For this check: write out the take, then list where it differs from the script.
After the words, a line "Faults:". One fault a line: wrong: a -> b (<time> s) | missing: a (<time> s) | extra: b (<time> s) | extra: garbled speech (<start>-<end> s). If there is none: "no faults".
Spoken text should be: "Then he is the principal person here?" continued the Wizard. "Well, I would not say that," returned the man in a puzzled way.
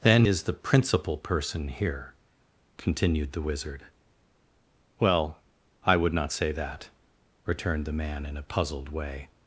"Then is the principal person here?" continued the Wizard. "Well, I would not say that," returned the man in a puzzled way.
Faults:
missing: he (0.2 s)